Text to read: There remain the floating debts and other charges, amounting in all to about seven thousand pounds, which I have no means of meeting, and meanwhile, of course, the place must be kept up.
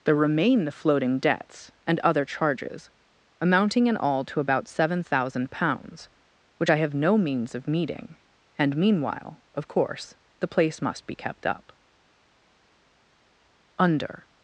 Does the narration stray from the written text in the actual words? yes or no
yes